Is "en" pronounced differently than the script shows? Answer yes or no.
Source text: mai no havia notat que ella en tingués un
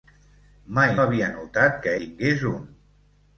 yes